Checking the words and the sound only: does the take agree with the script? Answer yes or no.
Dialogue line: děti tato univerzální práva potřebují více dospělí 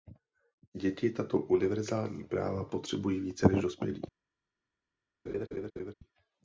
no